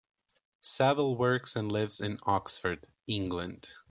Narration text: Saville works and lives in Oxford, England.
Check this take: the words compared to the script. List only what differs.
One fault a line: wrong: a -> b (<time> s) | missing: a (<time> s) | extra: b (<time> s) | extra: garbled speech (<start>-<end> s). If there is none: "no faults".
no faults